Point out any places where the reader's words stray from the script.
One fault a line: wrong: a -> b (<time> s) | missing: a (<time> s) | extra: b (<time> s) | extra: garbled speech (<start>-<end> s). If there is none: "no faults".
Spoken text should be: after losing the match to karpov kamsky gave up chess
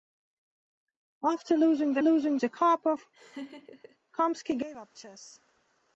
wrong: match -> losing (2.0 s)